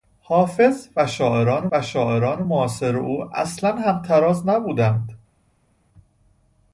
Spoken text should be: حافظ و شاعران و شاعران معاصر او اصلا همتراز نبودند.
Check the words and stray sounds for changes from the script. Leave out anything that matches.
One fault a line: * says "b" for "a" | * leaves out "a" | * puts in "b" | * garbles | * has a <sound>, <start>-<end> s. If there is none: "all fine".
all fine